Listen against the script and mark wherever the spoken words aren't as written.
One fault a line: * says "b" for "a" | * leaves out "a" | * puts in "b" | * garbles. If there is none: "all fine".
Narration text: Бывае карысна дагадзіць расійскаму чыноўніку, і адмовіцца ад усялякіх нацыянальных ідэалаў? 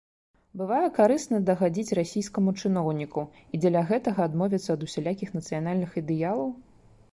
* puts in "дзеля гэтага"